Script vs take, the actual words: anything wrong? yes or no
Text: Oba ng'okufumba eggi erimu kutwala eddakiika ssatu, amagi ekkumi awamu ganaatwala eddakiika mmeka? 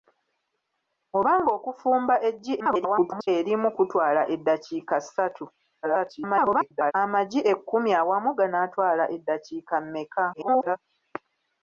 yes